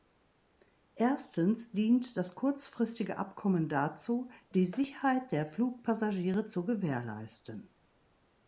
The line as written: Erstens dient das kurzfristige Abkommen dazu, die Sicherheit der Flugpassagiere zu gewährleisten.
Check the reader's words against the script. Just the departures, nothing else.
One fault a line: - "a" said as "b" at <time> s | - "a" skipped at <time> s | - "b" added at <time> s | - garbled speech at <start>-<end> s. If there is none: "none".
none